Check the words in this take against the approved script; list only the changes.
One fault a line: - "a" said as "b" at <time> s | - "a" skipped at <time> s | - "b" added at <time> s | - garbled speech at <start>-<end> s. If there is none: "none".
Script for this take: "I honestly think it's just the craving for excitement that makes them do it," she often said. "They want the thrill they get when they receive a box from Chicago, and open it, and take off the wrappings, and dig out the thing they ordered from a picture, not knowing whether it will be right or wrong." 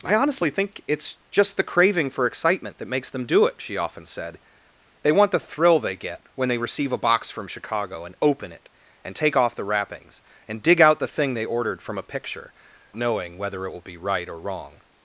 - "not" skipped at 12.5 s